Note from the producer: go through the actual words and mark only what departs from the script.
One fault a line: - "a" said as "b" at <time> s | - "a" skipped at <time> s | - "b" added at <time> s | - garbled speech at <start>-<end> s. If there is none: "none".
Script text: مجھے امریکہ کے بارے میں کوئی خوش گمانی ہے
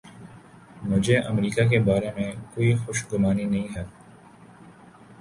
- "نہیں" added at 3.4 s